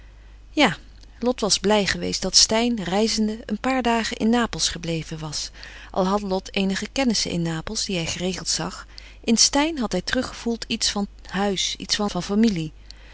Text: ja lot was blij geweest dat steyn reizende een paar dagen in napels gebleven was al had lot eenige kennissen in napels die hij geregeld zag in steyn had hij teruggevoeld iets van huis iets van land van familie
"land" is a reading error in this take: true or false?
true